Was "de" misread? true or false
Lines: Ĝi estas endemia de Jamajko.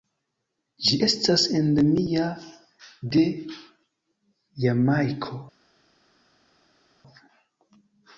false